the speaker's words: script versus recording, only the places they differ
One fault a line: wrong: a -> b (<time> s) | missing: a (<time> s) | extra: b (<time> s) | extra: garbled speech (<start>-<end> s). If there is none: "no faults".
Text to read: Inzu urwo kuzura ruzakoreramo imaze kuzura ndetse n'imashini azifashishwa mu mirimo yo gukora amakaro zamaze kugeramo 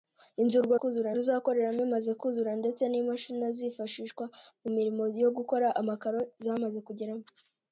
no faults